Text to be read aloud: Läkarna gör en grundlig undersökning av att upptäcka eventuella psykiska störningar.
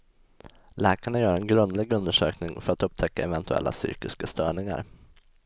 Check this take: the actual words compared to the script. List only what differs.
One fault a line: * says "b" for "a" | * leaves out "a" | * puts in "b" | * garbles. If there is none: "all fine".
* says "för" for "av"